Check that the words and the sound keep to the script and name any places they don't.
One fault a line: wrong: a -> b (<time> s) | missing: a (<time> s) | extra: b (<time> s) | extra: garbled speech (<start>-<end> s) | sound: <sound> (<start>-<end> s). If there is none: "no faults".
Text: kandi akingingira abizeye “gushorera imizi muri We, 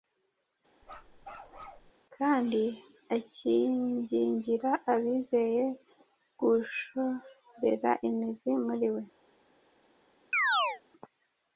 sound: bark (0.8-1.9 s)
sound: chirp (10.3-10.8 s)